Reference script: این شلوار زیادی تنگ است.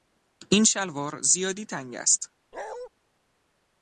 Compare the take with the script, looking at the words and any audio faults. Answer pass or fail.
fail